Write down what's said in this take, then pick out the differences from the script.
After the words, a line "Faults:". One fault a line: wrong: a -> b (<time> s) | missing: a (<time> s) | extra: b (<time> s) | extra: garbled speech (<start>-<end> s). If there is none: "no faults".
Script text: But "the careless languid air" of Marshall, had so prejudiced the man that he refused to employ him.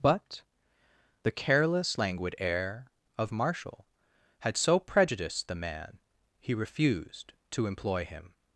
But "the careless languid air" of Marshall, had so prejudiced the man he refused to employ him.
Faults:
missing: that (6.0 s)